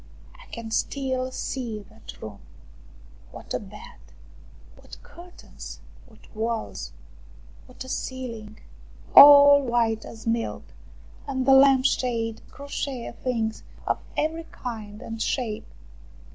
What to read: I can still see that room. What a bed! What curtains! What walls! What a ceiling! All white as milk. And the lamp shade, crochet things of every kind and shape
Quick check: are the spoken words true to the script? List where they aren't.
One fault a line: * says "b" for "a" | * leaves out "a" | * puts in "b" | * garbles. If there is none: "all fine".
all fine